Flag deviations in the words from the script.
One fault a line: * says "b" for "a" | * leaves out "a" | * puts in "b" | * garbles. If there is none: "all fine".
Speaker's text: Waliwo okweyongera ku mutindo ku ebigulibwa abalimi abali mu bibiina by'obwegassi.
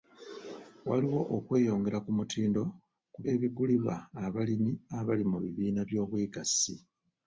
all fine